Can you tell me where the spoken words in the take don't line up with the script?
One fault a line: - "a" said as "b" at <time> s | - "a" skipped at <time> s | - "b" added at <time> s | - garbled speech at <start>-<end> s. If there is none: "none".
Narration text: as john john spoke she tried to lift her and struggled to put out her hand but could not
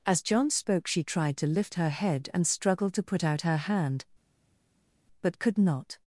- "john" skipped at 0.5 s
- "head" added at 1.9 s